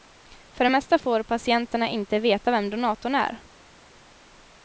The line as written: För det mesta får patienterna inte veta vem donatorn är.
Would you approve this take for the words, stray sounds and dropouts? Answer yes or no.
yes